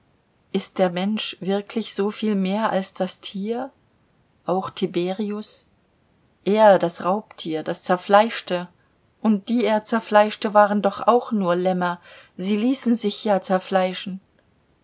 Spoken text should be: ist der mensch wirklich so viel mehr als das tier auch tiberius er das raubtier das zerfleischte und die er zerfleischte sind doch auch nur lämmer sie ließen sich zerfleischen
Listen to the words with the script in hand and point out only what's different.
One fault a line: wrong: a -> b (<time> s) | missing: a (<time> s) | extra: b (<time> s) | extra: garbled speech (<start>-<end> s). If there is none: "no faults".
wrong: sind -> waren (10.5 s)
extra: ja (13.3 s)